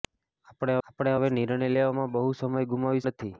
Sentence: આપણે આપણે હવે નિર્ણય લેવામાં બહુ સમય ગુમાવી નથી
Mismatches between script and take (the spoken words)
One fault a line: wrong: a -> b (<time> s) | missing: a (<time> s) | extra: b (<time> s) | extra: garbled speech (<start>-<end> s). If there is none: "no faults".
no faults